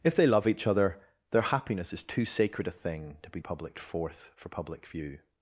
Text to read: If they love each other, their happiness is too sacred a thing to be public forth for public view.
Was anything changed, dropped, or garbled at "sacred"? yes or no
no